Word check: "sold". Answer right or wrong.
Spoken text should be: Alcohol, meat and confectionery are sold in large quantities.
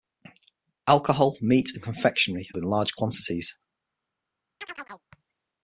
wrong